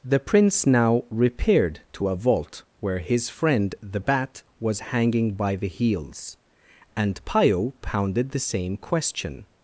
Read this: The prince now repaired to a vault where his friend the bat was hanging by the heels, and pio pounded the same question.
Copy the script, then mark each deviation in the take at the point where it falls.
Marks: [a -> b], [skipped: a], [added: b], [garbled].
The prince now repaired to a vault where his friend the bat was hanging by the heels, and pio pounded the same question.